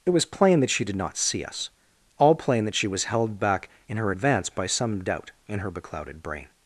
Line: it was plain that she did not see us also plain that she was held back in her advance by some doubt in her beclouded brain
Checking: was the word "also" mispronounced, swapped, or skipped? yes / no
yes